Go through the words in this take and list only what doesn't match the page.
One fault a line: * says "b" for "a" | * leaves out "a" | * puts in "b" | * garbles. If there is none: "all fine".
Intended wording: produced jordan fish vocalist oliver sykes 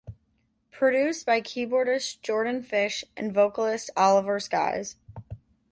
* puts in "by keyboardist"
* puts in "and"